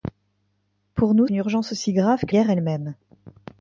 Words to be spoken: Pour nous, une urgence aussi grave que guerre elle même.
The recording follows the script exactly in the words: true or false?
true